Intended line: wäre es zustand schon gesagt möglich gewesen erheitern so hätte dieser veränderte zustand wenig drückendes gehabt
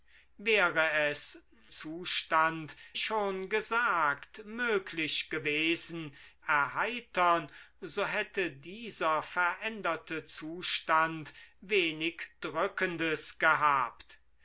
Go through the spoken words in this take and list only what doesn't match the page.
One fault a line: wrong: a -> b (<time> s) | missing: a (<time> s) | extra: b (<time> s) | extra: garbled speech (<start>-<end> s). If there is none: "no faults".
no faults